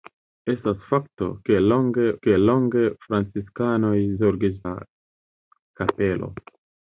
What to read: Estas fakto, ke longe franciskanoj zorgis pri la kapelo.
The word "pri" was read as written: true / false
false